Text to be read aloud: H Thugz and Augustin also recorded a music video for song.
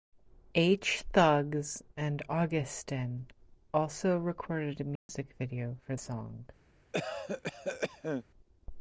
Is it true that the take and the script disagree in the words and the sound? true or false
true